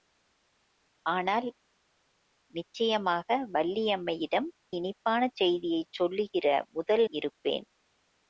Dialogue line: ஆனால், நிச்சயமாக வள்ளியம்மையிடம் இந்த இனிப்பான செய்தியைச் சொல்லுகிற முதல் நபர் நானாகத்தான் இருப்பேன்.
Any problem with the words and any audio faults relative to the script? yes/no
yes